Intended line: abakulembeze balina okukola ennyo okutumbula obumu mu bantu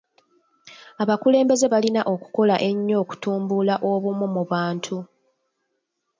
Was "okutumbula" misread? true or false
false